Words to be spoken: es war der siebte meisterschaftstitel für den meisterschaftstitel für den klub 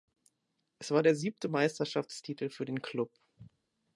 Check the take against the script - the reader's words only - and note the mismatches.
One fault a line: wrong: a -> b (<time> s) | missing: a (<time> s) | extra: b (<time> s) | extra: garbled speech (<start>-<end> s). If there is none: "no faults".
missing: meisterschaftstitel für den (2.8 s)